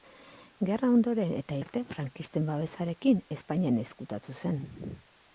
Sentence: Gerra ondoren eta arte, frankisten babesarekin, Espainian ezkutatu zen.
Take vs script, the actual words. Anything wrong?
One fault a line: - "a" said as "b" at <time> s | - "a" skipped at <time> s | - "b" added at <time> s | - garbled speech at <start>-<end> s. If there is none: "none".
none